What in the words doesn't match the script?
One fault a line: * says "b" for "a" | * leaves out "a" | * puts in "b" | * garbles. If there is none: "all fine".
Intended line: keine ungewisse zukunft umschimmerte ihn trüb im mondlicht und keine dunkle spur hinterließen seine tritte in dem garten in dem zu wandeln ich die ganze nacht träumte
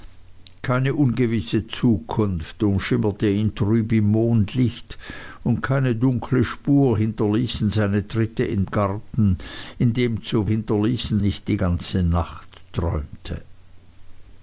* leaves out "dem"
* says "hinterließen" for "wandeln"